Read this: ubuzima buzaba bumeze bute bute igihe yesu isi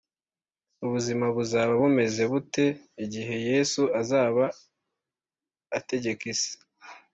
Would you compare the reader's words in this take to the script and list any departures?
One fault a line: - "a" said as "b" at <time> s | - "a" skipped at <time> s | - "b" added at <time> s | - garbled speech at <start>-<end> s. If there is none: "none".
- "bute" skipped at 2.7 s
- "azaba ategeka" added at 4.0 s